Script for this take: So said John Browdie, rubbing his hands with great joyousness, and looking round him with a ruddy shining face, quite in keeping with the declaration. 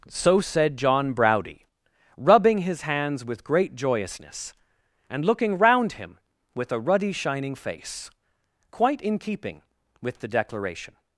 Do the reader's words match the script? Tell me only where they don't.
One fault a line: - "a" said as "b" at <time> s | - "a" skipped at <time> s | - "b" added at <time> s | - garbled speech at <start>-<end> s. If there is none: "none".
none